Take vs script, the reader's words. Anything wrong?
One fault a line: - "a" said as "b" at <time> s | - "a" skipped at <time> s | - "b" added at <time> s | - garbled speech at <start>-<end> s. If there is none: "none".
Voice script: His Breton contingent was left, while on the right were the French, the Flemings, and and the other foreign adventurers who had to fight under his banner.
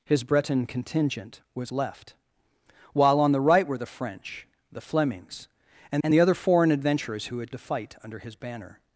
none